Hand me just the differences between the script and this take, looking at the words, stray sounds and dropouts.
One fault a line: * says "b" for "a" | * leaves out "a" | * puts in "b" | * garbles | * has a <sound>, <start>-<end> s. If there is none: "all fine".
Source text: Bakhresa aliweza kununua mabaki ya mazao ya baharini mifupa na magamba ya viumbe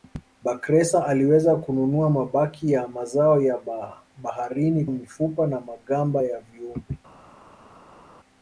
all fine